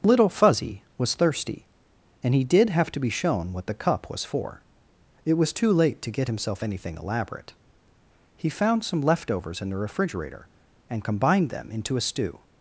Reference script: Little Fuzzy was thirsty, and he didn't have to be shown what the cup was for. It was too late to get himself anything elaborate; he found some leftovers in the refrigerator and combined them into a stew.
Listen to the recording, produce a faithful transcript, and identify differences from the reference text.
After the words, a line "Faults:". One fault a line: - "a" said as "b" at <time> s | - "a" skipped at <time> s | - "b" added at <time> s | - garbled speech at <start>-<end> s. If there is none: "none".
Little Fuzzy was thirsty, and he did have to be shown what the cup was for. It was too late to get himself anything elaborate; he found some leftovers in the refrigerator and combined them into a stew.
Faults:
- "didn't" said as "did" at 2.4 s